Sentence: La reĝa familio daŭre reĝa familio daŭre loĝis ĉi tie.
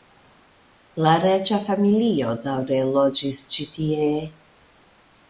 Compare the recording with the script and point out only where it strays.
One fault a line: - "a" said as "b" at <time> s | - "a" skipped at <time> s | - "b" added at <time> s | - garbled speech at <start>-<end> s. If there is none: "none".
- "reĝa familio daŭre" skipped at 2.8 s